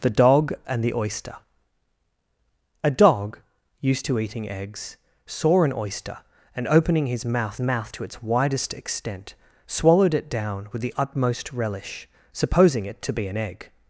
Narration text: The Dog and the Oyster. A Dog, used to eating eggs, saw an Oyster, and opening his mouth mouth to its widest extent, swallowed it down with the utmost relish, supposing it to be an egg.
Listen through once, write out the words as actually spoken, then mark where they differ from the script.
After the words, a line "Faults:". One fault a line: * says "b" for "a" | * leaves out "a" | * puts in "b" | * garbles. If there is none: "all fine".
The Dog and the Oyster. A Dog, used to eating eggs, saw an Oyster, and opening his mouth mouth to its widest extent, swallowed it down with the utmost relish, supposing it to be an egg.
Faults:
all fine